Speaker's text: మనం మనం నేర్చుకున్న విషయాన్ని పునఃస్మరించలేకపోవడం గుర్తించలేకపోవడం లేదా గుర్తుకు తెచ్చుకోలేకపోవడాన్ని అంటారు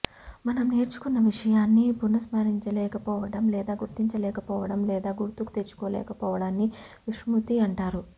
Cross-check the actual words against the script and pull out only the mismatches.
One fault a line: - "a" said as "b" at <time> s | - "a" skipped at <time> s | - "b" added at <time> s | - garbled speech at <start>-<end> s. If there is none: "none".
- "మనం" skipped at 0.6 s
- "లేదా" added at 3.5 s
- "విస్మృతి" added at 7.1 s